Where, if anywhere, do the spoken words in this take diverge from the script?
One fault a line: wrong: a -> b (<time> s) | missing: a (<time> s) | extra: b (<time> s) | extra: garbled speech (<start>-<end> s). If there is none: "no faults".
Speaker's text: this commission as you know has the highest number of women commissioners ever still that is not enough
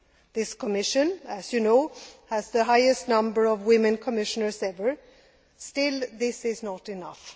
wrong: that -> this (6.1 s)